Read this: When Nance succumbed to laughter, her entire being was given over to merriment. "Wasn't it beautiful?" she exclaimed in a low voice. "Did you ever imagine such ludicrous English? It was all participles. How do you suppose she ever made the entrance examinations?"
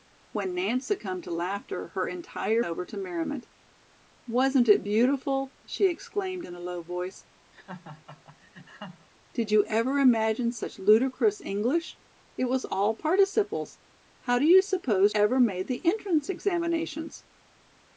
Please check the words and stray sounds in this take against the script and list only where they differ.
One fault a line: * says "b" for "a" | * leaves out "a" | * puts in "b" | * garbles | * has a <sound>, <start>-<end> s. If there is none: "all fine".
* leaves out "being was given"
* has a laugh, 7.5-9.1 s
* leaves out "she"